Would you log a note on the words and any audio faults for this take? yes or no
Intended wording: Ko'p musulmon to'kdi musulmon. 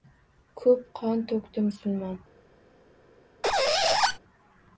yes